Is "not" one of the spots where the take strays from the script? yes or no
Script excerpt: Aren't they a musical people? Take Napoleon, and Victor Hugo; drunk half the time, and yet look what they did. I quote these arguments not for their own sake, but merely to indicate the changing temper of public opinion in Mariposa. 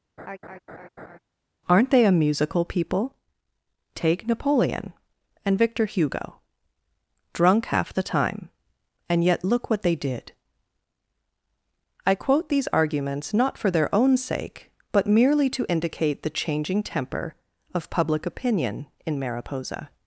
no